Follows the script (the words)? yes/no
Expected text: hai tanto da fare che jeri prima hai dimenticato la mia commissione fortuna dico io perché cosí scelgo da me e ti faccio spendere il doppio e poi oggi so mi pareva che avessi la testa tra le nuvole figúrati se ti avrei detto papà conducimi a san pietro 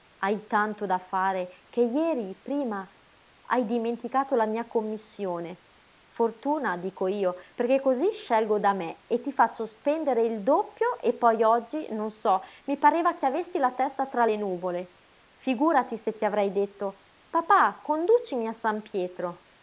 no